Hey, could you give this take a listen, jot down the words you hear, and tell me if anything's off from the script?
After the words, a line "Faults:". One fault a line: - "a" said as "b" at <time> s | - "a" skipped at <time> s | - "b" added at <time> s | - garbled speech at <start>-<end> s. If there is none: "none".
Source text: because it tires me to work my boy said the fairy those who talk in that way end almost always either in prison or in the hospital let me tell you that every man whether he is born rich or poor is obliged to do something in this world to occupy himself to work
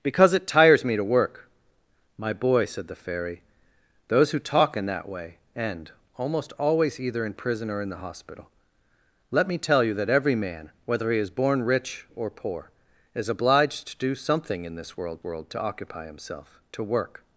because it tires me to work my boy said the fairy those who talk in that way end almost always either in prison or in the hospital let me tell you that every man whether he is born rich or poor is obliged to do something in this world world to occupy himself to work
Faults:
- "world" added at 15.2 s